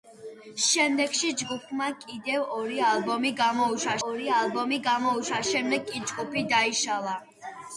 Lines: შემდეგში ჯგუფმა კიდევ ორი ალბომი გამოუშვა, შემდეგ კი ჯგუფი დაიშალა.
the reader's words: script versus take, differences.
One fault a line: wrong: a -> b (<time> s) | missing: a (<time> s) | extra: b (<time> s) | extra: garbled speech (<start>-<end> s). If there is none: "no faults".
extra: ორი ალბომი გამოუშვა (4.1 s)